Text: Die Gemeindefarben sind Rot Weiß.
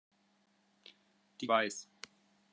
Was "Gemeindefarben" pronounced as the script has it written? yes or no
no